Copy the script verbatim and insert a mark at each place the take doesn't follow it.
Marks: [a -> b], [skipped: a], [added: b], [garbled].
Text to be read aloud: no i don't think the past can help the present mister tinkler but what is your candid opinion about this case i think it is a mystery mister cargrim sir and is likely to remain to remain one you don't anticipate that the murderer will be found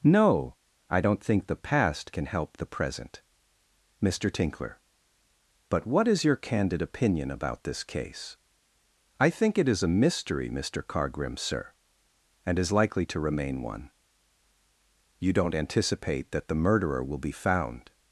no i don't think the past can help the present mister tinkler but what is your candid opinion about this case i think it is a mystery mister cargrim sir and is likely to remain [skipped: to remain] one you don't anticipate that the murderer will be found